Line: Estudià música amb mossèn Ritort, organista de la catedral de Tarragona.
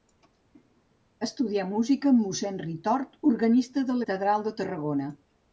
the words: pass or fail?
fail